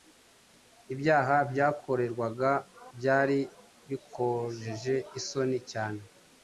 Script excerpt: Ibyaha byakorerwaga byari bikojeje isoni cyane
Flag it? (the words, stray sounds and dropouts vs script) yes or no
no